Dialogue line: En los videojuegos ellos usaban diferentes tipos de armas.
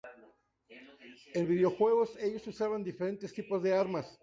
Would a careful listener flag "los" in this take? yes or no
yes